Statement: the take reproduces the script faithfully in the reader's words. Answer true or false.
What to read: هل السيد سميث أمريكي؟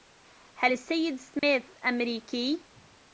true